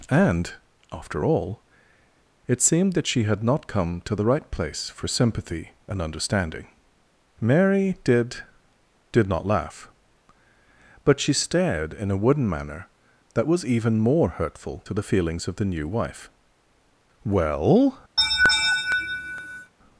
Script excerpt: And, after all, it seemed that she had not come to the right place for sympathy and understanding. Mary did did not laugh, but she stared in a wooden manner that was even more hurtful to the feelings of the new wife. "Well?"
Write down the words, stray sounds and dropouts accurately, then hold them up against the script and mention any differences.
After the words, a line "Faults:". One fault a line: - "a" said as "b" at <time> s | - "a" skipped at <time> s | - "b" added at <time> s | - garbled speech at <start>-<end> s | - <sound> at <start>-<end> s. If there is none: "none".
And, after all, it seemed that she had not come to the right place for sympathy and understanding. Mary did did not laugh, but she stared in a wooden manner that was even more hurtful to the feelings of the new wife. "Well?"
Faults:
- laugh at 18.2-19.7 s